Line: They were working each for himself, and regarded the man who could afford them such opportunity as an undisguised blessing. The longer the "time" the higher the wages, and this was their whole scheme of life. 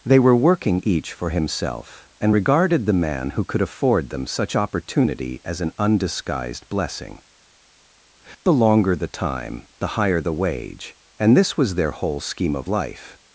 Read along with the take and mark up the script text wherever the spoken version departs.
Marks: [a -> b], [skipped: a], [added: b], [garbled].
They were working each for himself, and regarded the man who could afford them such opportunity as an undisguised blessing. The longer the "time" the higher the [wages, -> wage] and this was their whole scheme of life.